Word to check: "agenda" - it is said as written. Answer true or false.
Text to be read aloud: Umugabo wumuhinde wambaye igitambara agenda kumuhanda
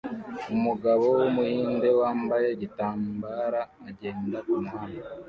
true